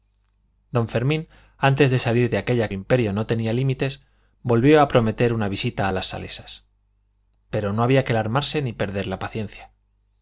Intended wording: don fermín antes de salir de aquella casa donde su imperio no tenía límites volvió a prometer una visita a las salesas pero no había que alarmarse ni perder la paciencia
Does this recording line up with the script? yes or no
no